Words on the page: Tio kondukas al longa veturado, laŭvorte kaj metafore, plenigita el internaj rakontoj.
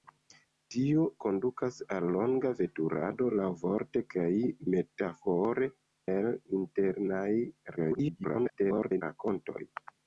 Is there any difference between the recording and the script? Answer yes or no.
yes